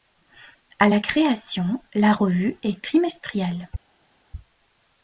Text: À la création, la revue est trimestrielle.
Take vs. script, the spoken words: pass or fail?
pass